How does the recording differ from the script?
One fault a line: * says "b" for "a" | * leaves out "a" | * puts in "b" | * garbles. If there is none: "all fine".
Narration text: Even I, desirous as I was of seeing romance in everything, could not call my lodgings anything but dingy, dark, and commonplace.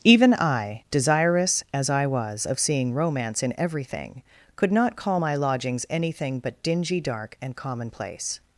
all fine